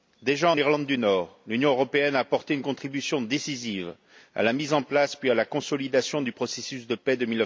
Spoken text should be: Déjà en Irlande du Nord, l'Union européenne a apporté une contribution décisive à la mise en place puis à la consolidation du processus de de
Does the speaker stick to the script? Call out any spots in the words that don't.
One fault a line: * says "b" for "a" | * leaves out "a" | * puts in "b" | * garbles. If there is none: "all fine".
* puts in "paix"